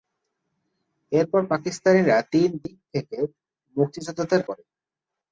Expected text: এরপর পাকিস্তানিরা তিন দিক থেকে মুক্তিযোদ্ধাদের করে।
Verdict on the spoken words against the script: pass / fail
pass